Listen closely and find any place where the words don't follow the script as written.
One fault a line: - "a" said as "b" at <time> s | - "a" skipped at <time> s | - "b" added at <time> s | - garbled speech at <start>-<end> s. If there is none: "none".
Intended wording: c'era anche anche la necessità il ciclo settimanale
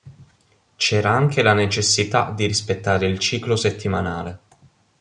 - "anche" skipped at 1.4 s
- "di rispettare" added at 2.4 s